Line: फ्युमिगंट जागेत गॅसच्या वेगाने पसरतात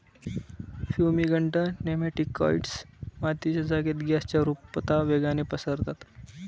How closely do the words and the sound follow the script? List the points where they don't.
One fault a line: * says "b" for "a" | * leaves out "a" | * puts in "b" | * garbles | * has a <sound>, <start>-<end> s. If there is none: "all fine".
* puts in "नेमॅटिकाइड्स मातीच्या"
* puts in "रुपता"